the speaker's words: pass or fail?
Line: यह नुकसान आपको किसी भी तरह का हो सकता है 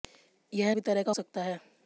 fail